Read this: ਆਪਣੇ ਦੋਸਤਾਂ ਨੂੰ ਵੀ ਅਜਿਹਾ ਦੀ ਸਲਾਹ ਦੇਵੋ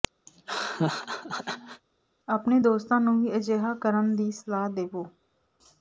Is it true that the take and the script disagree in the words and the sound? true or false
true